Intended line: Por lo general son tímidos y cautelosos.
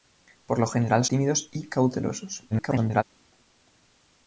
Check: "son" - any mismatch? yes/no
yes